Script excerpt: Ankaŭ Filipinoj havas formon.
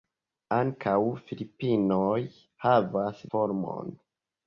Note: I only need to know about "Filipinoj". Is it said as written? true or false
true